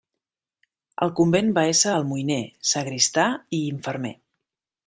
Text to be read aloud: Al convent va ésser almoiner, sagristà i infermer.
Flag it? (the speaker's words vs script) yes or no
no